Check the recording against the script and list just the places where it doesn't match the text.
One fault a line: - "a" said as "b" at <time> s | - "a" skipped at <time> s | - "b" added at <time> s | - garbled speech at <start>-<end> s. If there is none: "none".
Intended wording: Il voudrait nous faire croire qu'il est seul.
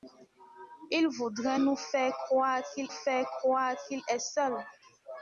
- "faire croire qu'il" added at 2.9 s